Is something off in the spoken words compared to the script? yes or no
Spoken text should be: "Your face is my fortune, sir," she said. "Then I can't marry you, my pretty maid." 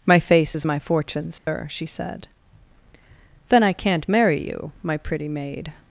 yes